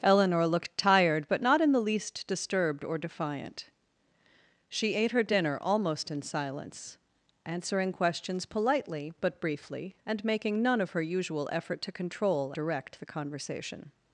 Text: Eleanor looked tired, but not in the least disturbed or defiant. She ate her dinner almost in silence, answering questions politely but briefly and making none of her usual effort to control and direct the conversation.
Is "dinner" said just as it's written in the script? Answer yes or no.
yes